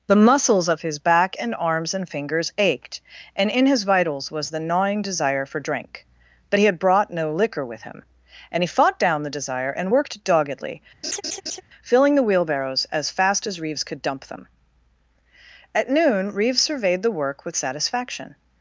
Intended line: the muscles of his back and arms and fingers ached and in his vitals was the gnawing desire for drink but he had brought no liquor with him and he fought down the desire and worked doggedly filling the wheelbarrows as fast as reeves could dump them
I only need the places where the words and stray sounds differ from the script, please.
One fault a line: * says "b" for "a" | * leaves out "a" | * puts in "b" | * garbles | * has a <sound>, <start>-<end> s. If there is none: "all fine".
* has a laugh, 11.0-11.6 s
* puts in "at noon reeves surveyed the work with satisfaction"